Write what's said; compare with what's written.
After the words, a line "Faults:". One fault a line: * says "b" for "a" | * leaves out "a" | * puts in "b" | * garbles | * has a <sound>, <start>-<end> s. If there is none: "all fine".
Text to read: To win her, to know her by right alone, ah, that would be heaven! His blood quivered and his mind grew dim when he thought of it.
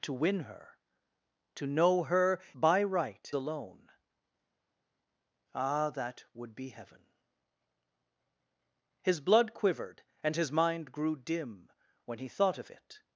To win her, to know her by right alone, ah, that would be heaven! His blood quivered and his mind grew dim when he thought of it.
Faults:
all fine